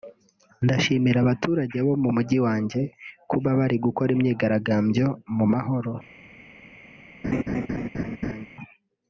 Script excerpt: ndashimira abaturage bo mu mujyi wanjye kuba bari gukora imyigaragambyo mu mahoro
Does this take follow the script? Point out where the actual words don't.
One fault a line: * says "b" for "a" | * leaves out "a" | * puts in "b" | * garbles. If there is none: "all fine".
all fine